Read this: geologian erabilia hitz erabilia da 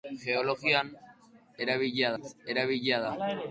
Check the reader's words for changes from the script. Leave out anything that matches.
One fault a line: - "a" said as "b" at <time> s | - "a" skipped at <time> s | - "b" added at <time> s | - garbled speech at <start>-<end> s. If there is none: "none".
none